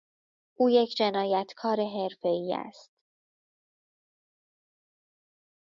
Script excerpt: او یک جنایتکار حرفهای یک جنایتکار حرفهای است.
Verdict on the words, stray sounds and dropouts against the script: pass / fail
fail